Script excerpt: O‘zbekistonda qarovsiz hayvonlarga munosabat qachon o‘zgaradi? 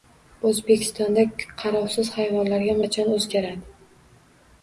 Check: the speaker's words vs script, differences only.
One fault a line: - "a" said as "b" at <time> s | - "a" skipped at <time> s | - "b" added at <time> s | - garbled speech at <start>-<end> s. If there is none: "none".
- "munosabat" skipped at 2.8 s